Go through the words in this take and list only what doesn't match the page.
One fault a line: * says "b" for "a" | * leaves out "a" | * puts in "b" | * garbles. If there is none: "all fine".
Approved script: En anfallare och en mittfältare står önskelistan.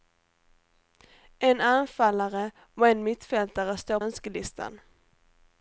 all fine